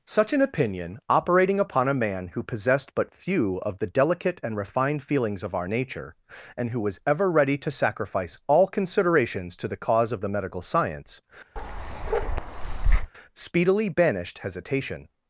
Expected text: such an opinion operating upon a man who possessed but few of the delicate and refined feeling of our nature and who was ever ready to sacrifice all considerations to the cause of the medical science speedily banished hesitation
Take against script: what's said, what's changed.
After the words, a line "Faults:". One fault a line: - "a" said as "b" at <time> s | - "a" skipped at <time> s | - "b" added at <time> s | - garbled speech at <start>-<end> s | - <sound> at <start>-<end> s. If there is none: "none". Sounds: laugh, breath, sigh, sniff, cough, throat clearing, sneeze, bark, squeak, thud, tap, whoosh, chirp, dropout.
such an opinion operating upon a man who possessed but few of the delicate and refined feelings of our nature and who was ever ready to sacrifice all considerations to the cause of the medical science speedily banished hesitation
Faults:
- "feeling" said as "feelings" at 5.0 s
- bark at 11.6-13.1 s